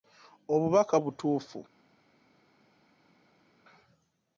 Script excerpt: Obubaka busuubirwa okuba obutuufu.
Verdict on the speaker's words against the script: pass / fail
fail